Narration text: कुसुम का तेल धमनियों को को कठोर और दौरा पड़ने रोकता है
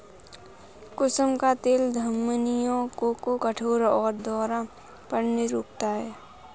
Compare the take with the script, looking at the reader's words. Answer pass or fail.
pass